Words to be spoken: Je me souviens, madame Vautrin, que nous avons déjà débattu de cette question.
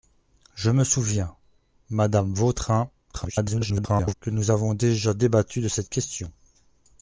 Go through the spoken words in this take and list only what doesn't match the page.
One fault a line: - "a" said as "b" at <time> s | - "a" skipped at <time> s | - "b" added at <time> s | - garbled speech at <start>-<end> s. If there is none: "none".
- garbled speech at 3.1-4.1 s